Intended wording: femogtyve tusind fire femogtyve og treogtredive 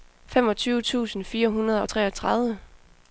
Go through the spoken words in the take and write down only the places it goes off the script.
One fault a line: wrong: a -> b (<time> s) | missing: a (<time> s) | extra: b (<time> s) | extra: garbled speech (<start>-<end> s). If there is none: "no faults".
wrong: femogtyve -> hundrede (1.5 s)